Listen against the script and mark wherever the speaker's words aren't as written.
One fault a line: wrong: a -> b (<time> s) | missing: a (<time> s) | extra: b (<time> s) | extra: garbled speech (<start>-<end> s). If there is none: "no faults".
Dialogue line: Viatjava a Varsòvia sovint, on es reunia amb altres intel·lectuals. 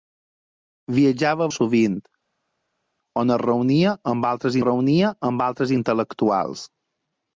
missing: Varsòvia (1.5 s)
extra: reunia amb altres (4.6 s)